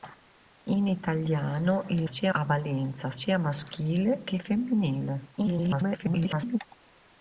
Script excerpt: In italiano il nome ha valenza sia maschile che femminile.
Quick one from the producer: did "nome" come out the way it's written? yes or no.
no